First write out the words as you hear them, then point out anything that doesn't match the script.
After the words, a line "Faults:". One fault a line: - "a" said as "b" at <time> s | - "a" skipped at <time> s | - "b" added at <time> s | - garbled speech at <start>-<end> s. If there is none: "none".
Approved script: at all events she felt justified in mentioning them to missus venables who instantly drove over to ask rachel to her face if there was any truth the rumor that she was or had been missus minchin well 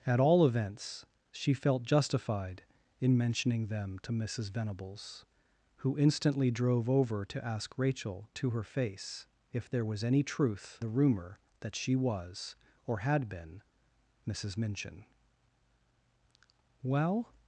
at all events she felt justified in mentioning them to missus venables who instantly drove over to ask rachel to her face if there was any truth the rumor that she was or had been missus minchin well
Faults:
none